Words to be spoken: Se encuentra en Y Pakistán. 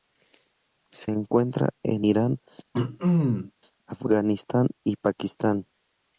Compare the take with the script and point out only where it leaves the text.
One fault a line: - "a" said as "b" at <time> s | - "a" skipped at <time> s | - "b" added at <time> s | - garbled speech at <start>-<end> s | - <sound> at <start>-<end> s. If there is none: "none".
- "Irán Afganistán" added at 2.0 s
- throat clearing at 2.7-3.5 s